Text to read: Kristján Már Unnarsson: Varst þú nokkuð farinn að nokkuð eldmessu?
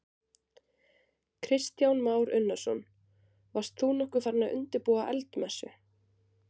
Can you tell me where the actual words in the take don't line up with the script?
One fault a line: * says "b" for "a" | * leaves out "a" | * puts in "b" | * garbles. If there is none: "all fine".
* says "undirbúa" for "nokkuð"